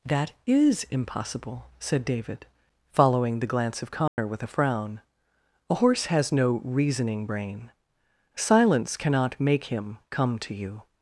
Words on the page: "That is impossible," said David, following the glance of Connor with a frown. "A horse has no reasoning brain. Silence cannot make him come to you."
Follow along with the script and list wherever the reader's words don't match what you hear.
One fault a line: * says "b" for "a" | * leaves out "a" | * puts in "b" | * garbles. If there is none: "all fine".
all fine